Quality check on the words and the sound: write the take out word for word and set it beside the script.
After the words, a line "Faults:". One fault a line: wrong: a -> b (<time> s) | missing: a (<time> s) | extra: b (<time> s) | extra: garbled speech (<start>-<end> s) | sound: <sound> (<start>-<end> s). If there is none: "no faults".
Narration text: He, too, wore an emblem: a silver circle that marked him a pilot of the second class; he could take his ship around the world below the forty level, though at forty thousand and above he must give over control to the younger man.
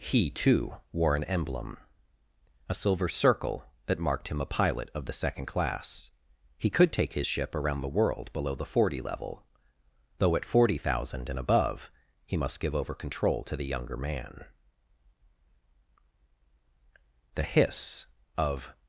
He, too, wore an emblem: a silver circle that marked him a pilot of the second class; he could take his ship around the world below the forty level, though at forty thousand and above he must give over control to the younger man. The hiss of
Faults:
extra: The hiss of (17.3 s)